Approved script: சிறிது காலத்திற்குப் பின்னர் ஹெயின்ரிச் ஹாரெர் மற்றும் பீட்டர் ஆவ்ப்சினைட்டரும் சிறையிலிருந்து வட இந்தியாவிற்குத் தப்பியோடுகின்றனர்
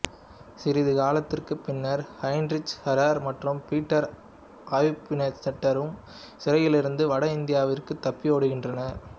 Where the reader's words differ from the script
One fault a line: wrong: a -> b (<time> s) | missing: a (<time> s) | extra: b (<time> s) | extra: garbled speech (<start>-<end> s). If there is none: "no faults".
no faults